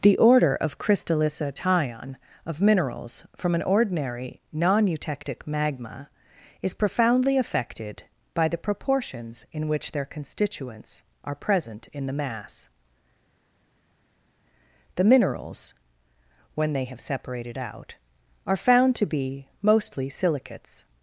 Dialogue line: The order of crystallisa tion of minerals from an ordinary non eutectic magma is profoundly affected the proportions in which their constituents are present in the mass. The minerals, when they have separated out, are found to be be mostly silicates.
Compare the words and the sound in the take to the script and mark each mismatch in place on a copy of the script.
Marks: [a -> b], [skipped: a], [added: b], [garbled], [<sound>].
The order of crystallisa tion of minerals from an ordinary non eutectic magma is profoundly affected [added: by] the proportions in which their constituents are present in the mass. The minerals, when they have separated out, are found to be [skipped: be] mostly silicates.